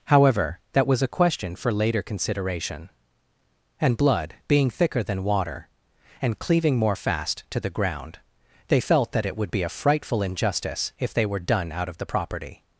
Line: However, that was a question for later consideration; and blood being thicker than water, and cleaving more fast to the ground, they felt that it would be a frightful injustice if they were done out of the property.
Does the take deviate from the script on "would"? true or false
false